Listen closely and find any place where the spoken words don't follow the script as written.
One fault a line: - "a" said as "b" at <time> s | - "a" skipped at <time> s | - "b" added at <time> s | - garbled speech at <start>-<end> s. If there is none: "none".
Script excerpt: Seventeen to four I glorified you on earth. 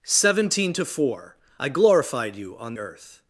none